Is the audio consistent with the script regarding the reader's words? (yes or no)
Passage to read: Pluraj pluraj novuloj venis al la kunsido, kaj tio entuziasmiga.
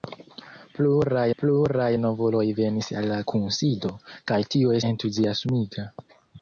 yes